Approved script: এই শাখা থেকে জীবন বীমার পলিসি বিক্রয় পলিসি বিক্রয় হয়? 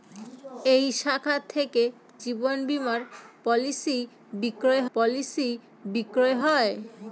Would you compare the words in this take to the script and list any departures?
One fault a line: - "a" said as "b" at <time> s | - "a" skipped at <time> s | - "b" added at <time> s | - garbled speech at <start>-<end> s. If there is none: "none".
none